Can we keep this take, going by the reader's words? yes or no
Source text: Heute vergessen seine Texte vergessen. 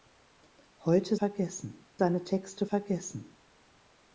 yes